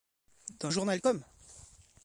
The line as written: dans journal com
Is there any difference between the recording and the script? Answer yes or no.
no